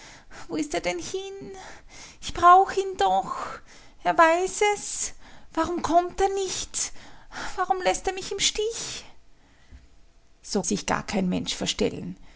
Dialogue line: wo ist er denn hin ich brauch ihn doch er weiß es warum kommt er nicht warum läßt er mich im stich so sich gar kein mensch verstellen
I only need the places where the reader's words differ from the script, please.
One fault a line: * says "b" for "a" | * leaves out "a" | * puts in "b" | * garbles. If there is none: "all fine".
all fine